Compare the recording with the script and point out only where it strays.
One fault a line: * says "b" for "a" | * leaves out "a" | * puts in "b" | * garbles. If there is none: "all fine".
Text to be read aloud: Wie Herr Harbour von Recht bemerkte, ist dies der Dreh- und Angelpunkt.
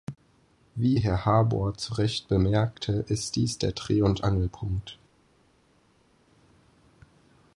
* says "zu" for "von"